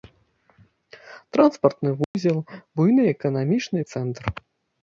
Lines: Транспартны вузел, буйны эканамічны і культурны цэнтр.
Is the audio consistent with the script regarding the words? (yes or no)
no